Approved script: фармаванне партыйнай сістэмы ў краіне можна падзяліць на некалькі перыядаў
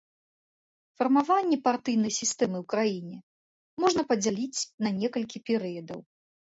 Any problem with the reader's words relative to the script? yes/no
no